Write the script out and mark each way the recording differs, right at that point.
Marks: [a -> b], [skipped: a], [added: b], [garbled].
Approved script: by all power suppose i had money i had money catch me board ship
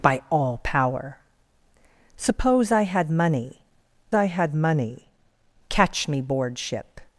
by all power suppose i had money i had money catch me board ship